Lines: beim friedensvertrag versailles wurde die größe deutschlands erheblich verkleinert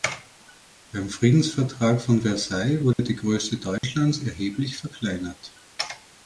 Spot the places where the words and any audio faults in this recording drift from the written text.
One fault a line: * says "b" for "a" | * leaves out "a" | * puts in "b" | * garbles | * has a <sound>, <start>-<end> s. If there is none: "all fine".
* puts in "von"
* has a dropout, 2.9-3.0 s
* has a dropout, 3.8-3.8 s